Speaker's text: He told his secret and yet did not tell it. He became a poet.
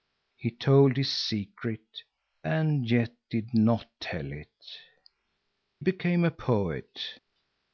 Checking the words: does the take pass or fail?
fail